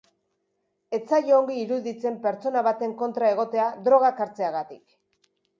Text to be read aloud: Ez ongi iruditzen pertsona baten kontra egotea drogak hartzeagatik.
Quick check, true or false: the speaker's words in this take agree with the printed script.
false